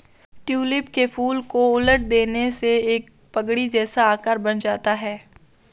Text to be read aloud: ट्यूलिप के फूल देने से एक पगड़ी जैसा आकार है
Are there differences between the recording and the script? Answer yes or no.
yes